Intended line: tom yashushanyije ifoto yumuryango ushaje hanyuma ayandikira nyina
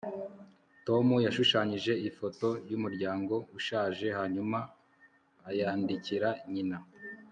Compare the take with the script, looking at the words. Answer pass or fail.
pass